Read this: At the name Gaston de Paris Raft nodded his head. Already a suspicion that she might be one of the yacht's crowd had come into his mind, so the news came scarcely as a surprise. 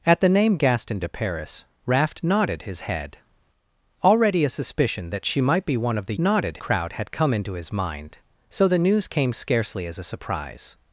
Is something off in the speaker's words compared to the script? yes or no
yes